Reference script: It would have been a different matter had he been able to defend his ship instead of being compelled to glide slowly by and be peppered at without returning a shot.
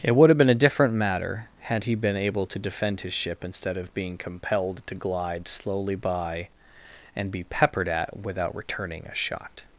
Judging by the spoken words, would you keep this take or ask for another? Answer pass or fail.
pass